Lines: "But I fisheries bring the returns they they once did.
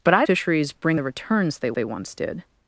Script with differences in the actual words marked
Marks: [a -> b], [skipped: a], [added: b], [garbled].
"But I fisheries bring the returns they they once did.